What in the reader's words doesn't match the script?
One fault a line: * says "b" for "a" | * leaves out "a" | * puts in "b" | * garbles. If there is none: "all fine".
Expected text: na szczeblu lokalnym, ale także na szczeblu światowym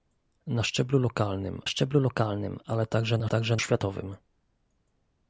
* puts in "szczeblu lokalnym"
* says "także" for "szczeblu"